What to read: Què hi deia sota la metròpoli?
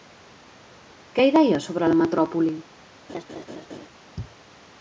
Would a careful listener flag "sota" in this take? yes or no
yes